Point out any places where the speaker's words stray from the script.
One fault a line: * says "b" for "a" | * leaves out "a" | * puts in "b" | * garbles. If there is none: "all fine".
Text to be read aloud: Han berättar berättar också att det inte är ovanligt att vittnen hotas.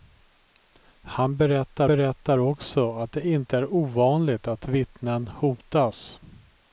all fine